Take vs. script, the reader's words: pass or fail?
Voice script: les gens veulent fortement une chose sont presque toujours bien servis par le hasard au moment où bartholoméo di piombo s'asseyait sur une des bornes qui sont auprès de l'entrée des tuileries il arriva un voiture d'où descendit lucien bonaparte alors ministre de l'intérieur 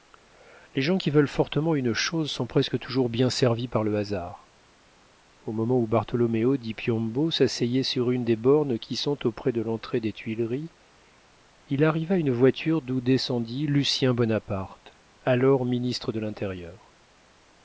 fail